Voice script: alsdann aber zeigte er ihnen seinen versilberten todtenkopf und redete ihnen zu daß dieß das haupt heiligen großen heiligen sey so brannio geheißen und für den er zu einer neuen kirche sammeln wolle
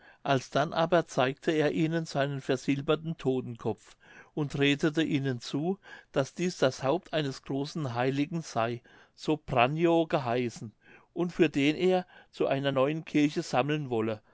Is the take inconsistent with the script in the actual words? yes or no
yes